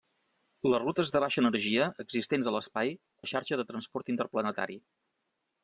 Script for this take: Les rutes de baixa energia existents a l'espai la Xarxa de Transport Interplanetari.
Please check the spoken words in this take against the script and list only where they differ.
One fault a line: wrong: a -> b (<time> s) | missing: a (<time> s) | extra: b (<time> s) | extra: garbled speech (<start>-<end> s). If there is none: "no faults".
no faults